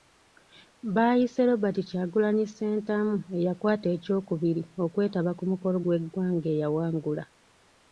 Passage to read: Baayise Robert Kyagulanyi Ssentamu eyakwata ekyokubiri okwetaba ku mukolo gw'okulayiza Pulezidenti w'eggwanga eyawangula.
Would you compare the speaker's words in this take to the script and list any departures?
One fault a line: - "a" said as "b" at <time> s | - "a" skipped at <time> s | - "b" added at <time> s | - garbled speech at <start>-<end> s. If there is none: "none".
- "gw'okulayiza Pulezidenti" skipped at 5.8 s